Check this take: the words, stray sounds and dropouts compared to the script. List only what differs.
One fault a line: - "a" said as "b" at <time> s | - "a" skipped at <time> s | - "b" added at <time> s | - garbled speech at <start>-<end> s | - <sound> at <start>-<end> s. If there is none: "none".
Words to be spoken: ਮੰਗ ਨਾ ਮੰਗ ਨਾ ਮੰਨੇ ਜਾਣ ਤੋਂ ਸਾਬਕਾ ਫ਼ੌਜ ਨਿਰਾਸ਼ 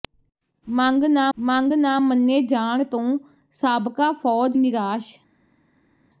none